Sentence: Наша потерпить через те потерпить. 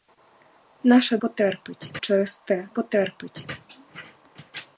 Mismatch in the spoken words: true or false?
false